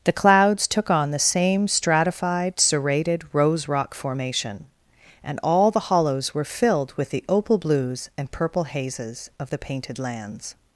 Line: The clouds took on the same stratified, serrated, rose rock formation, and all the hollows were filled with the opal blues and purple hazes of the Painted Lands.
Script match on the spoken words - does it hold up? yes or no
yes